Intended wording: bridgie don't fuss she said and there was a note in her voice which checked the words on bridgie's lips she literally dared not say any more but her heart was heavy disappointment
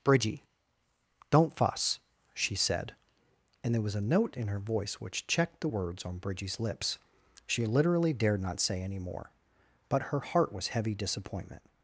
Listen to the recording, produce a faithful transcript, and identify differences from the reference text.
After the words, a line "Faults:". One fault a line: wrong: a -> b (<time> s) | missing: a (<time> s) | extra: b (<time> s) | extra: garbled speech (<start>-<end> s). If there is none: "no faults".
bridgie don't fuss she said and there was a note in her voice which checked the words on bridgie's lips she literally dared not say any more but her heart was heavy disappointment
Faults:
no faults